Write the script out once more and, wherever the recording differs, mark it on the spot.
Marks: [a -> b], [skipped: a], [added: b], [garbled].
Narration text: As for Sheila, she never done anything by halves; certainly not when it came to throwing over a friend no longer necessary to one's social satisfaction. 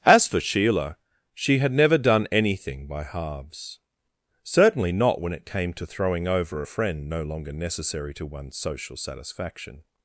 As for Sheila, she [added: had] never done anything by halves; certainly not when it came to throwing over a friend no longer necessary to one's social satisfaction.